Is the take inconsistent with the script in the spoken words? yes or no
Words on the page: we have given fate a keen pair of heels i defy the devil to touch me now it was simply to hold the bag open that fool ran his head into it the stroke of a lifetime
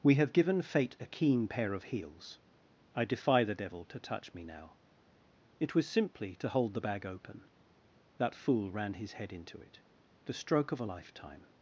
no